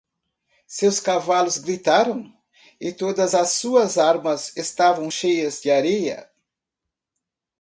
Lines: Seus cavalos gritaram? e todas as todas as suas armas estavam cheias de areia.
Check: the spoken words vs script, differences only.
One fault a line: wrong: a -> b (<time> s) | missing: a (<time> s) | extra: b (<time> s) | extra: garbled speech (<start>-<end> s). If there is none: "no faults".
missing: todas as (3.5 s)